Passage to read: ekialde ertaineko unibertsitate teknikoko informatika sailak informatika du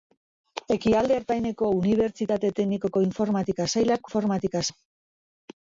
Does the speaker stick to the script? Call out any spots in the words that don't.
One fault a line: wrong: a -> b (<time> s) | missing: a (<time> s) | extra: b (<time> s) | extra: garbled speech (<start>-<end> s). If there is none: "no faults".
no faults